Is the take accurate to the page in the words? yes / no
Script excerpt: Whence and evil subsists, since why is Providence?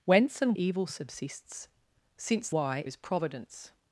yes